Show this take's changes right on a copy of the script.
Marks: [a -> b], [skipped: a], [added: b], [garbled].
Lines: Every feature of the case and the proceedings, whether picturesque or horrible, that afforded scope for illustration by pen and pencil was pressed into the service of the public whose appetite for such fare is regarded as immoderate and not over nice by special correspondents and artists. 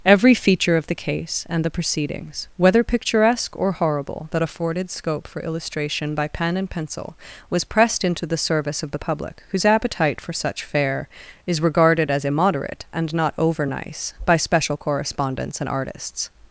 Every feature of the case and the proceedings, whether picturesque or horrible, that afforded scope for illustration by pen and pencil was pressed into the service of the public whose appetite for such fare is regarded as immoderate and not over nice by special correspondents and artists.